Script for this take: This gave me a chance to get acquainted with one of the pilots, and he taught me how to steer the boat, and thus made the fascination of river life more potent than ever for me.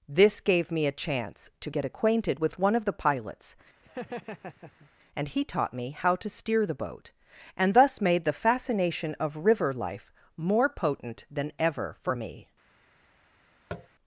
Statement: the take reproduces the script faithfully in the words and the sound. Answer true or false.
false